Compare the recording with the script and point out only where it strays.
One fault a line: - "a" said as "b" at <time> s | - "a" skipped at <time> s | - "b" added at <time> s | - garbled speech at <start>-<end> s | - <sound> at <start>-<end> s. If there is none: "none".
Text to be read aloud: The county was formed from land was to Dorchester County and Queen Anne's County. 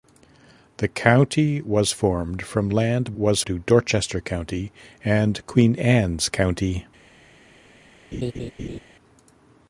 - laugh at 8.1-8.8 s